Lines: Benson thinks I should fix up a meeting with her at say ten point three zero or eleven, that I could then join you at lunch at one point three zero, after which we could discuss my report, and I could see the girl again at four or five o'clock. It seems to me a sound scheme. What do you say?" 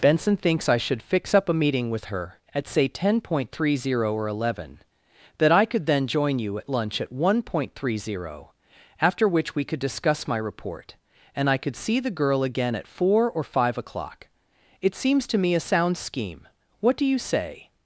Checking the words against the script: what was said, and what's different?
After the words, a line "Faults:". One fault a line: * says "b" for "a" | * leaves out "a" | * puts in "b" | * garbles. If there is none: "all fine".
Benson thinks I should fix up a meeting with her at say ten point three zero or eleven, that I could then join you at lunch at one point three zero, after which we could discuss my report, and I could see the girl again at four or five o'clock. It seems to me a sound scheme. What do you say?"
Faults:
all fine